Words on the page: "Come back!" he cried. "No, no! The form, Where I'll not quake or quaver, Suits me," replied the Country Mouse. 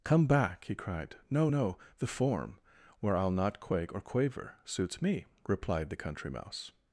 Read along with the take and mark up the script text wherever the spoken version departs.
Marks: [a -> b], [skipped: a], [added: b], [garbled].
"Come back!" he cried. "No, no! The form, Where I'll not quake or quaver, Suits me," replied the Country Mouse.